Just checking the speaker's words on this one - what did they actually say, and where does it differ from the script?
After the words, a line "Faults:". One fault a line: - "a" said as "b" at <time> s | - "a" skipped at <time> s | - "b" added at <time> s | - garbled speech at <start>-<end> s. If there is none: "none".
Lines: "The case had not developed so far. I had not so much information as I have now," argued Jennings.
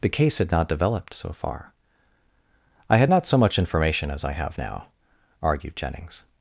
"The case had not developed so far. I had not so much information as I have now," argued Jennings.
Faults:
none